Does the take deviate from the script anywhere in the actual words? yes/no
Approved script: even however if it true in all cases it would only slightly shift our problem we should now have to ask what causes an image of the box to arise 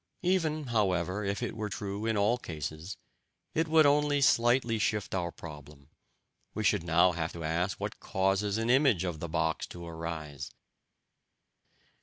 yes